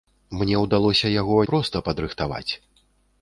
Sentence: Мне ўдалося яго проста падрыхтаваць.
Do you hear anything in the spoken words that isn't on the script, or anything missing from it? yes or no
no